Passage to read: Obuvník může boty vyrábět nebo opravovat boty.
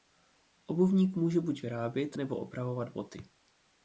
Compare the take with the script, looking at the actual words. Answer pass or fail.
fail